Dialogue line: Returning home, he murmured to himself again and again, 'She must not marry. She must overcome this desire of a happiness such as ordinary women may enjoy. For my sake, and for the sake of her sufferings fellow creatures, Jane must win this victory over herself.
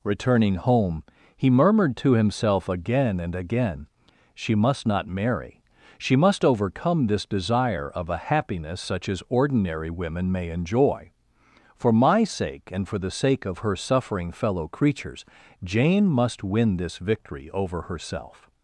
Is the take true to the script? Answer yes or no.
no